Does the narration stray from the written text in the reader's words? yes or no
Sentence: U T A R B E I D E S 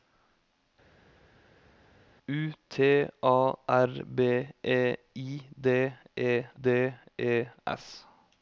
yes